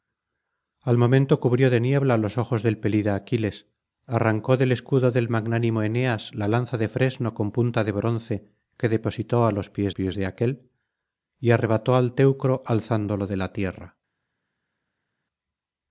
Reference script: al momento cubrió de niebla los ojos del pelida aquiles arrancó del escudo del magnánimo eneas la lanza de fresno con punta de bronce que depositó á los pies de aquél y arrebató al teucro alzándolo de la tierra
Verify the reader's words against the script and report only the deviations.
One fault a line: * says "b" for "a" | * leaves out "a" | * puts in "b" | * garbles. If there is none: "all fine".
* puts in "pies"